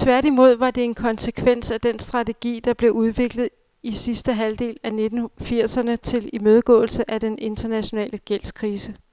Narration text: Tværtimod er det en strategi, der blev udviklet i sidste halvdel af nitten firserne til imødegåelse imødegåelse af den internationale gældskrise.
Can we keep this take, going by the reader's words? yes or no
no